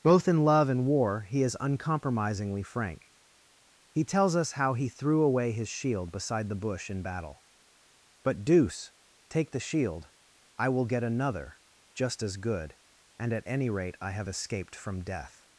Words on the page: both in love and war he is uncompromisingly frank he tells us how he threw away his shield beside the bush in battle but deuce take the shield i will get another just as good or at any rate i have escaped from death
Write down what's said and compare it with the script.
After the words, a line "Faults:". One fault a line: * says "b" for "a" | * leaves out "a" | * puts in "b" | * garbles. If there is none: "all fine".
both in love and war he is uncompromisingly frank he tells us how he threw away his shield beside the bush in battle but deuce take the shield i will get another just as good and at any rate i have escaped from death
Faults:
* says "and" for "or"